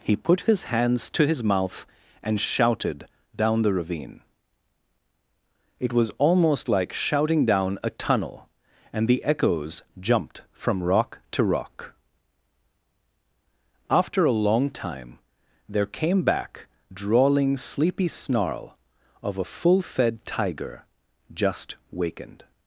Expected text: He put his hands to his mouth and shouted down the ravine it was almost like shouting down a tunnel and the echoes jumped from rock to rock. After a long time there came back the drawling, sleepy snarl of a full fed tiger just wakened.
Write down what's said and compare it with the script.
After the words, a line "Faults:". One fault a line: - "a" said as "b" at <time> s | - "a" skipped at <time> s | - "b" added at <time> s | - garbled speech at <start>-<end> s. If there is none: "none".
He put his hands to his mouth and shouted down the ravine it was almost like shouting down a tunnel and the echoes jumped from rock to rock. After a long time there came back drawling, sleepy snarl of a full fed tiger just wakened.
Faults:
- "the" skipped at 16.7 s